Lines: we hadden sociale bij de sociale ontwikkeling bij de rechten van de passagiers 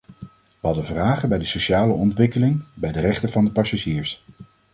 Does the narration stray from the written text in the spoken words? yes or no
yes